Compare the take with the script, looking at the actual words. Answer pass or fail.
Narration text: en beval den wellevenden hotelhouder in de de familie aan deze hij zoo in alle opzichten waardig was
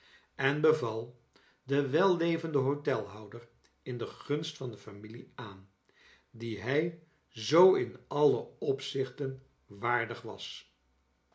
fail